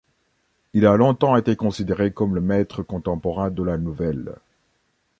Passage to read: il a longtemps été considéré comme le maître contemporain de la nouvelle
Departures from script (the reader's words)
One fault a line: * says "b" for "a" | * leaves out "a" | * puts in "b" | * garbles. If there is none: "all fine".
all fine